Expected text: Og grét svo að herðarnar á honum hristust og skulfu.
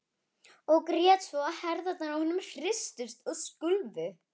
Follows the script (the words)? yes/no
yes